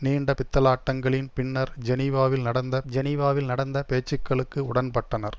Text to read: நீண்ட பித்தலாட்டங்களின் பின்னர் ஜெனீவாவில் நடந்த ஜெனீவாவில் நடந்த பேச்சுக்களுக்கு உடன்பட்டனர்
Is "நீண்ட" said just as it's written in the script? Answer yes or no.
yes